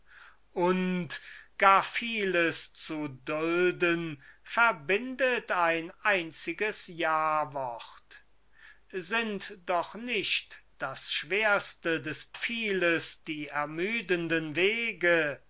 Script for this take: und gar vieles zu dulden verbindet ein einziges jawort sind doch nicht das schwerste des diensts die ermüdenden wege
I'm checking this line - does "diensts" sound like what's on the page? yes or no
no